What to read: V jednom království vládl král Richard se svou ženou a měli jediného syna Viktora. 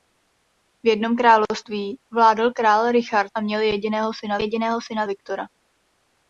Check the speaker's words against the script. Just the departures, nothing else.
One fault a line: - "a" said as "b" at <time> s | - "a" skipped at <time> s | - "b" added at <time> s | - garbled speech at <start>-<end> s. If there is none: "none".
- "se svou ženou a měli" said as "a měli jediného syna" at 3.4 s